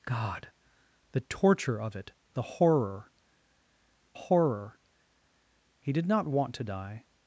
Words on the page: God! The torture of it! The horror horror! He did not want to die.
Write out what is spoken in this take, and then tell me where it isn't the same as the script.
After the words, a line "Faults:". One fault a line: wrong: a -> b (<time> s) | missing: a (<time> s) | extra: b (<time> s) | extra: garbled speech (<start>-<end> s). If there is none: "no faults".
God! The torture of it! The horror horror! He did not want to die.
Faults:
no faults